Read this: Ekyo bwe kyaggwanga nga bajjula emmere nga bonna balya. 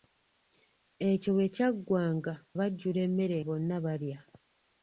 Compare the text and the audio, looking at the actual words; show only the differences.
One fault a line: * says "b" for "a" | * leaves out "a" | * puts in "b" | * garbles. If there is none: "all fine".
* leaves out "nga"
* leaves out "nga"